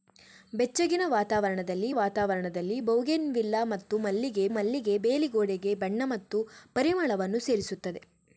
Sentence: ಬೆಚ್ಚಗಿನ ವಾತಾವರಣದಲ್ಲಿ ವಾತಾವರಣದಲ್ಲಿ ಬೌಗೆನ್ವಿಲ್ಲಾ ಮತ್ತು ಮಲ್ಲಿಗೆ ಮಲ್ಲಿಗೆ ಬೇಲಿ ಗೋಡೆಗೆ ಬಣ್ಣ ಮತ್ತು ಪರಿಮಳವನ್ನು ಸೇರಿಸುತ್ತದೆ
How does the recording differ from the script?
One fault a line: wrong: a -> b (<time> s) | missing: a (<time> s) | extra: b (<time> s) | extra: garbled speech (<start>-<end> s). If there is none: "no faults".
no faults